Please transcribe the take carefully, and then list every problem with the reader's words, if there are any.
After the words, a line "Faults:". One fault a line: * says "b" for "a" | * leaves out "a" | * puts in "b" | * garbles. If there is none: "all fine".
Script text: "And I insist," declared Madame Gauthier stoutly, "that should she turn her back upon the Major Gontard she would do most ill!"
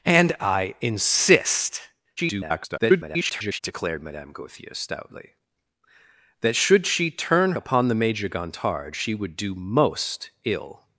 "And I insist," [garbled] declared Madame Gauthier stoutly, "that should she turn upon the Major Gontard she would do most ill!"
Faults:
* garbles
* leaves out "her back"